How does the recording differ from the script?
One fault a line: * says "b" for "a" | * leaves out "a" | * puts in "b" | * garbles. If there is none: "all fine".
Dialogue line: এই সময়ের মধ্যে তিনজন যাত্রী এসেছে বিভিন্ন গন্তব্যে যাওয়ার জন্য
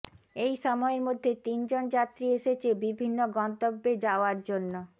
all fine